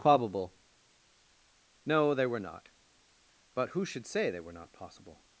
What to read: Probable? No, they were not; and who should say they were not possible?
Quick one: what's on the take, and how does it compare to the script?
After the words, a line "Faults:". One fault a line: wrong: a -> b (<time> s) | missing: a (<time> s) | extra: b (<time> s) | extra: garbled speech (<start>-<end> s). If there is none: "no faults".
Probable? No, they were not; but who should say they were not possible?
Faults:
wrong: and -> but (3.5 s)